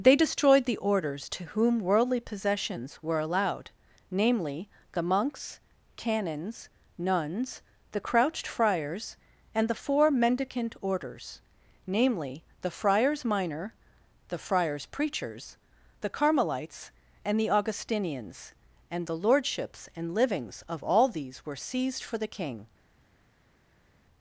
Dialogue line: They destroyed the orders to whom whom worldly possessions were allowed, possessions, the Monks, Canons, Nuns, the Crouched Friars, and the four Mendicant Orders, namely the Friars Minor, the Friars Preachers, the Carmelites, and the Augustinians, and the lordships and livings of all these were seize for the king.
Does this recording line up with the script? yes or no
no